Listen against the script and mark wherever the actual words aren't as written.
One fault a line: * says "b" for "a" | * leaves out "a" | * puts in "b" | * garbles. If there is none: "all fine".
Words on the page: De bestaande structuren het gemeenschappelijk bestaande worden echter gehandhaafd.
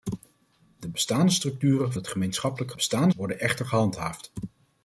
all fine